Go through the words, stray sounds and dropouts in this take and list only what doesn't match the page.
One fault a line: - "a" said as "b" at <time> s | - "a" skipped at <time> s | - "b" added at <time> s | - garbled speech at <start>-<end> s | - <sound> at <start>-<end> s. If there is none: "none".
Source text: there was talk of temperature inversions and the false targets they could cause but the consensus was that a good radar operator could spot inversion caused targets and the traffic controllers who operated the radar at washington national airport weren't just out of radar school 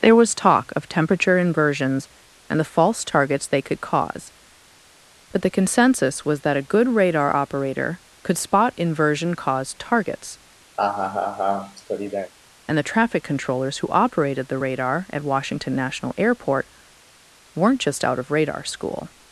- laugh at 10.8-12.3 s